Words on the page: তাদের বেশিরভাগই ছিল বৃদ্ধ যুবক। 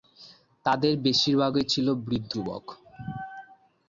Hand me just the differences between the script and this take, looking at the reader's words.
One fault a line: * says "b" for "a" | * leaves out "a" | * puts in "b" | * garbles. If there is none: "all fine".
all fine